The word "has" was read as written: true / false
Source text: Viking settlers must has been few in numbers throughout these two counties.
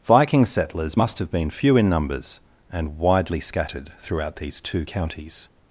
false